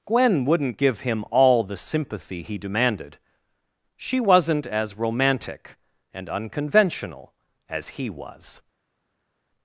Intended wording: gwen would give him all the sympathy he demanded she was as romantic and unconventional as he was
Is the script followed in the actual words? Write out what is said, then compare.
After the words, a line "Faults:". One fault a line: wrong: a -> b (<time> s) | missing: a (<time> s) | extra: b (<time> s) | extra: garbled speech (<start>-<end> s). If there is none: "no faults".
gwen wouldn't give him all the sympathy he demanded she wasn't as romantic and unconventional as he was
Faults:
wrong: would -> wouldn't (0.5 s)
wrong: was -> wasn't (4.2 s)